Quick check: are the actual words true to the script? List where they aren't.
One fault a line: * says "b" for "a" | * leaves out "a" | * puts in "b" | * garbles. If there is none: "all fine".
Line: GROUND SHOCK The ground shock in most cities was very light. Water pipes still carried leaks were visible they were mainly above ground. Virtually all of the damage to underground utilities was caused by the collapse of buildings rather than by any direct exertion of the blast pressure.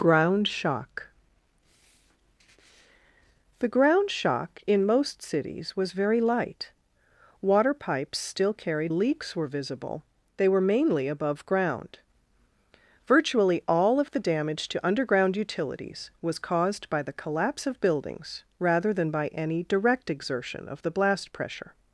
all fine